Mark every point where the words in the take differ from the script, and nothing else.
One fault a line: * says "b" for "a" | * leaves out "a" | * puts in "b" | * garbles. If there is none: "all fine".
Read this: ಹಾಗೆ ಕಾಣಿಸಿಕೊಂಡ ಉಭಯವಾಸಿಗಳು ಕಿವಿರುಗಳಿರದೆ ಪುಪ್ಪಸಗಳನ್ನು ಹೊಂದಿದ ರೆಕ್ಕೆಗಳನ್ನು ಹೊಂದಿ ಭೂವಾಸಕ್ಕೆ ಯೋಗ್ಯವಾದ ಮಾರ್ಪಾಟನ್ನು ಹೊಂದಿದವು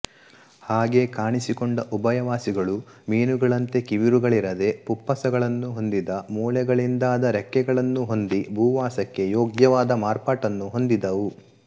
* puts in "ಮೀನುಗಳಂತೆ"
* puts in "ಮೂಳೆಗಳಿಂದಾದ"